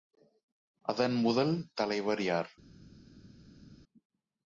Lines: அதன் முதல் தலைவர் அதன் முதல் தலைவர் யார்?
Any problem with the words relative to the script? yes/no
yes